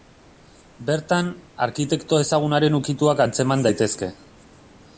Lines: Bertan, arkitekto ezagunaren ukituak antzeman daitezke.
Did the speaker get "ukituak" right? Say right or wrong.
right